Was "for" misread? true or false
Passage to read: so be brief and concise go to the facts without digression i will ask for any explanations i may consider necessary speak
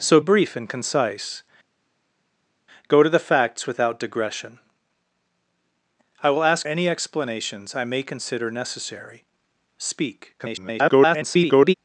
true